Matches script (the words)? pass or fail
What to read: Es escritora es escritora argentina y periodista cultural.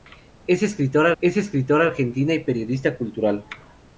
pass